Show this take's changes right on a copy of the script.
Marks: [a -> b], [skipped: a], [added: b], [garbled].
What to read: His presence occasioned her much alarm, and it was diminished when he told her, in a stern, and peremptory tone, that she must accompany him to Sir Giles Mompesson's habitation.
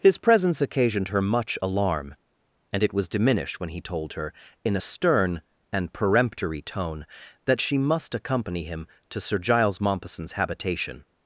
His presence occasioned her much alarm, and it was diminished when he told her, in a stern, and peremptory tone, that she must accompany him to Sir Giles Mompesson's habitation.